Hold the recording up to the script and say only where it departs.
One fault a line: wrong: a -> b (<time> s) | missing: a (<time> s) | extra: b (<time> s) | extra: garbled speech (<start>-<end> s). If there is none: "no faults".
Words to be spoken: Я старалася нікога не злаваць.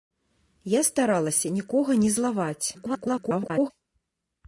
extra: garbled speech (2.7-3.7 s)